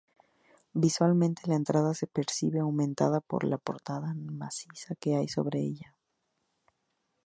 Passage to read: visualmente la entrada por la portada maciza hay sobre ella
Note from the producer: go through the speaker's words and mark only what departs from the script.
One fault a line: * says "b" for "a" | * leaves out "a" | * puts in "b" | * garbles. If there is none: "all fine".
* puts in "se percibe aumentada"
* puts in "que"